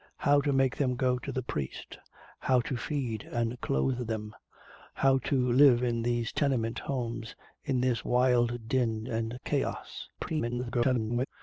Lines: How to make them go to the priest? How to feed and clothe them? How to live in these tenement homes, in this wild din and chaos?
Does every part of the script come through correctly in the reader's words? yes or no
no